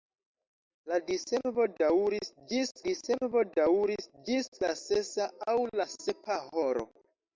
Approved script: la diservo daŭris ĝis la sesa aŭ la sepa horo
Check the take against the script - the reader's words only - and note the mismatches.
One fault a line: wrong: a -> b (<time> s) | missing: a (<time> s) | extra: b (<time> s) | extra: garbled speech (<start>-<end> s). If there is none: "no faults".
extra: diservo daŭris ĝis (2.9 s)